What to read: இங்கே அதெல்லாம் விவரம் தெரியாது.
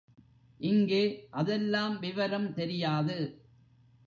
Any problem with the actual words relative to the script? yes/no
no